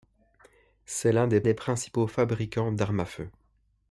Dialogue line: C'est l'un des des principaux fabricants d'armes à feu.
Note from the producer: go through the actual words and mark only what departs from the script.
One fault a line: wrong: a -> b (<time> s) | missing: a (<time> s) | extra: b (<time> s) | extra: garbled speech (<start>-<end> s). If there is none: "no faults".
no faults